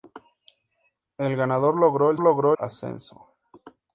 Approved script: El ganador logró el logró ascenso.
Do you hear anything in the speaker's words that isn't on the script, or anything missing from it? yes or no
no